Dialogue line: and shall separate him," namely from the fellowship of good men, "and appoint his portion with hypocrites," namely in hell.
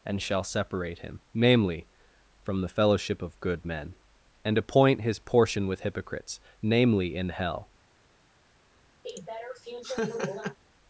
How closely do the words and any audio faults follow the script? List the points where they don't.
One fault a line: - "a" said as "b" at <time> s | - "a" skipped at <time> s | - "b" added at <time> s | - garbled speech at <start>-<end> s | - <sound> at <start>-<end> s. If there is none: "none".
- laugh at 9.0-10.6 s